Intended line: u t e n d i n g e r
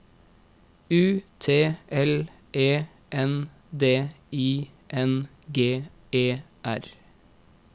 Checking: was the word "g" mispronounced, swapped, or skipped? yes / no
no